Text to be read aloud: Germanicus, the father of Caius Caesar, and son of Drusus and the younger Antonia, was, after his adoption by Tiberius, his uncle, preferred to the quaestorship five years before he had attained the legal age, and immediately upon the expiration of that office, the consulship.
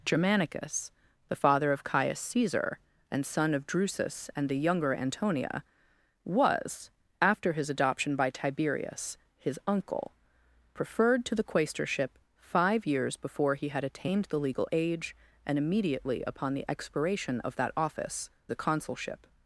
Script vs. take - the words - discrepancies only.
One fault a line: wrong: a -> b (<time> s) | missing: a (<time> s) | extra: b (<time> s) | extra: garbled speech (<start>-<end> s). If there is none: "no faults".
no faults